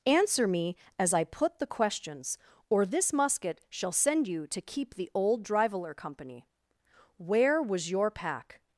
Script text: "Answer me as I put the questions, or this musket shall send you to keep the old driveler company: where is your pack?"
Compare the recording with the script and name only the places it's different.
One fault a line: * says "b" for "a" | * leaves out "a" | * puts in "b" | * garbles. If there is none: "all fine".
* says "was" for "is"